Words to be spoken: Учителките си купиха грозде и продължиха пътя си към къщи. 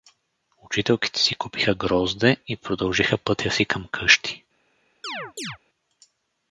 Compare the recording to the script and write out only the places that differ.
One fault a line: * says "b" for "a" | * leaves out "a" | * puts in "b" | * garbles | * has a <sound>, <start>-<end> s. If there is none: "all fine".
* has a chirp, 5.0-5.6 s